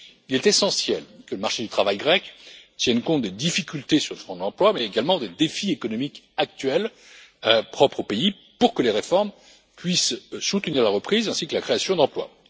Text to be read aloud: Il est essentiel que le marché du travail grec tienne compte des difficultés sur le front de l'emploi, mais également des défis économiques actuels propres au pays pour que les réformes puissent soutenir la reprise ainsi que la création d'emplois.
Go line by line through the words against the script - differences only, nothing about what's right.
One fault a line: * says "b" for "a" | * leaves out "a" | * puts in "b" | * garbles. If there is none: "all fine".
all fine